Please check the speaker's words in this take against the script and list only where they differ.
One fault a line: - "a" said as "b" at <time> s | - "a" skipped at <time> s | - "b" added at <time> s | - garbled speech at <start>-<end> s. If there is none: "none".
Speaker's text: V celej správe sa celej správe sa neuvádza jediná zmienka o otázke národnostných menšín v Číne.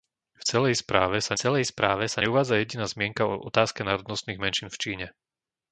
none